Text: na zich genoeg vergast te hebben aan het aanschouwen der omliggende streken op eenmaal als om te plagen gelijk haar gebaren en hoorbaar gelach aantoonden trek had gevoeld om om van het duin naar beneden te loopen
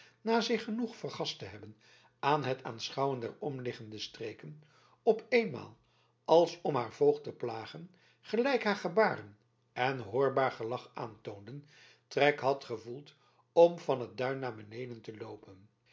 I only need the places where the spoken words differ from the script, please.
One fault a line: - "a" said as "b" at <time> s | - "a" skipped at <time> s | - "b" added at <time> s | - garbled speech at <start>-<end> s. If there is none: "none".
- "haar voogd" added at 6.7 s
- "om" skipped at 13.8 s